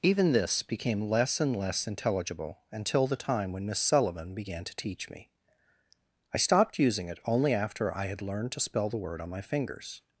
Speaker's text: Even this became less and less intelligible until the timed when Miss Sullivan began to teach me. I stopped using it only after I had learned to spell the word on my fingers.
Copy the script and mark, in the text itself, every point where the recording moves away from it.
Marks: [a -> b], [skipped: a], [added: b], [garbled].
Even this became less and less intelligible until the [timed -> time] when Miss Sullivan began to teach me. I stopped using it only after I had learned to spell the word on my fingers.